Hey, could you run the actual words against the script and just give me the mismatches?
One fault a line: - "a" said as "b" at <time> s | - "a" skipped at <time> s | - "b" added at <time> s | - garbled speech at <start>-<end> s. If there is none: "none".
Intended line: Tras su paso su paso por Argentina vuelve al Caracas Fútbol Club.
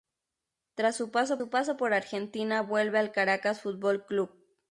none